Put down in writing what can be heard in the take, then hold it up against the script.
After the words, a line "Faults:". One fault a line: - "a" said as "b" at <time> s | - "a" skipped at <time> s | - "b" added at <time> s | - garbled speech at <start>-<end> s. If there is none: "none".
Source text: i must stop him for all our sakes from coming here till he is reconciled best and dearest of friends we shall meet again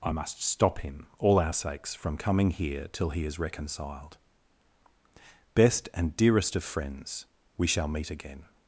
i must stop him all our sakes from coming here till he is reconciled best and dearest of friends we shall meet again
Faults:
- "for" skipped at 1.1 s